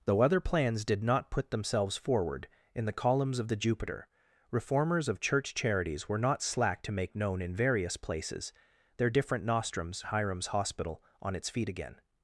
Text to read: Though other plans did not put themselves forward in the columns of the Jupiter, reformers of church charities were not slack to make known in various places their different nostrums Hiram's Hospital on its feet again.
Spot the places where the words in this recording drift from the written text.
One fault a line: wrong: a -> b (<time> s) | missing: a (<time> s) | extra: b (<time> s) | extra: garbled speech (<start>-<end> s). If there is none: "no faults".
no faults